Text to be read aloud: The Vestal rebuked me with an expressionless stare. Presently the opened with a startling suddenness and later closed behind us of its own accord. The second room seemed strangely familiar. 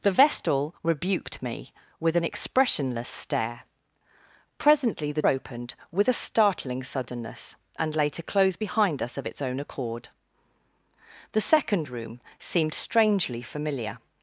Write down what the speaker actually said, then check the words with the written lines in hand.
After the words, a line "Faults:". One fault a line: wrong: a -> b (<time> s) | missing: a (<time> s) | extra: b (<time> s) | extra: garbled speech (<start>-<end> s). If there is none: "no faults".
The Vestal rebuked me with an expressionless stare. Presently the opened with a startling suddenness and later closed behind us of its own accord. The second room seemed strangely familiar.
Faults:
no faults